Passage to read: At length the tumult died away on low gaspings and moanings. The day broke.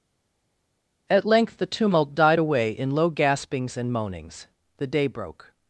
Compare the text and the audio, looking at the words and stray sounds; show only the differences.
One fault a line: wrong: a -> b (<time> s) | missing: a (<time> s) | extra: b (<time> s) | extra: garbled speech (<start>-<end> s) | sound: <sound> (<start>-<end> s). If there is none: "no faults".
wrong: on -> in (2.7 s)